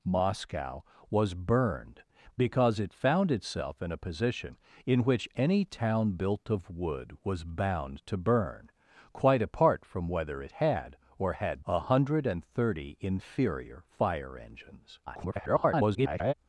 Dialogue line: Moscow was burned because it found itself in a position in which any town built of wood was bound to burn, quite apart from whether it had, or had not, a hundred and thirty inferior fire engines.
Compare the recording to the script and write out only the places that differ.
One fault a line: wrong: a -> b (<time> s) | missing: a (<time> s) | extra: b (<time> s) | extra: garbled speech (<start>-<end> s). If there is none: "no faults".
missing: not (11.7 s)
extra: garbled speech (15.1-16.3 s)